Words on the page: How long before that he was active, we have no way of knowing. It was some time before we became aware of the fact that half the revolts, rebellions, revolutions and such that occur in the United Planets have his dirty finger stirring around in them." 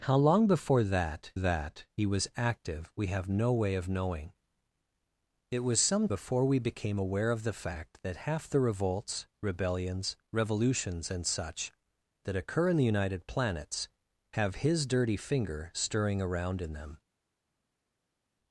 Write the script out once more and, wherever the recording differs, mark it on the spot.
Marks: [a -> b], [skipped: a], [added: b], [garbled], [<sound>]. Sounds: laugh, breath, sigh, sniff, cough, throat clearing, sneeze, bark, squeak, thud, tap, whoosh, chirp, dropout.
How long before that [added: that] he was active, we have no way of knowing. It was some [skipped: time] before we became aware of the fact that half the revolts, rebellions, revolutions and such that occur in the United Planets have his dirty finger stirring around in them."